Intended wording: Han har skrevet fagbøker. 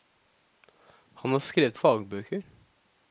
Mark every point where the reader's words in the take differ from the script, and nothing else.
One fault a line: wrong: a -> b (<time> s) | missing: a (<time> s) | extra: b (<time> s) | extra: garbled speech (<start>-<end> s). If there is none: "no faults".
no faults